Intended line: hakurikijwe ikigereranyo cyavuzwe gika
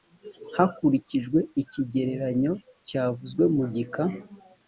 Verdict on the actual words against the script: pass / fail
fail